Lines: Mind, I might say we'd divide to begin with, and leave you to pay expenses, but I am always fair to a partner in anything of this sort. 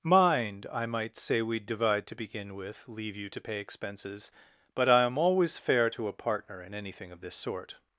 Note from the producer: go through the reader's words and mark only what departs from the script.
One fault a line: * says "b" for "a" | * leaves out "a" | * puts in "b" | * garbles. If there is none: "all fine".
* leaves out "and"